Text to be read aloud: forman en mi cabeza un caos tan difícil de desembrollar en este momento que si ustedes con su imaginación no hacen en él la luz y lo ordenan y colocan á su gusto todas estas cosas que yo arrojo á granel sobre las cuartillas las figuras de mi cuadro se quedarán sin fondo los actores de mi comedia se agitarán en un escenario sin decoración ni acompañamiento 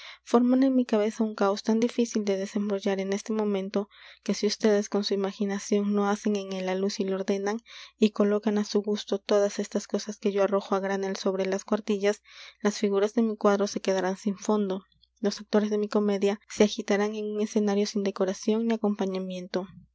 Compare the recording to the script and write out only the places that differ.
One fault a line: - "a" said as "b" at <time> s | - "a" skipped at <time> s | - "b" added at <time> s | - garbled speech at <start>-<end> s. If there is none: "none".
none